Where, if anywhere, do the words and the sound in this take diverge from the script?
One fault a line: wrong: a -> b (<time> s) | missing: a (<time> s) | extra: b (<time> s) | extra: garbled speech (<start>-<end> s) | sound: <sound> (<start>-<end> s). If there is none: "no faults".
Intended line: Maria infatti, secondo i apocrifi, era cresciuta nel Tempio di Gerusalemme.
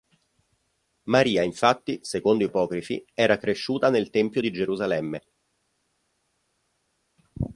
no faults